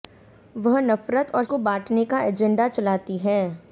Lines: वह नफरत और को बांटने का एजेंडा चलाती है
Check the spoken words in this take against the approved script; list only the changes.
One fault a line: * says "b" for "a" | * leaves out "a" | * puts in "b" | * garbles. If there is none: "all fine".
all fine